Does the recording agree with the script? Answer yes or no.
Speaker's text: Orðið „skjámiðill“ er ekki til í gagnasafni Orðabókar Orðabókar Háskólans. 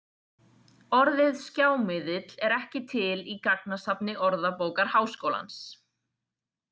no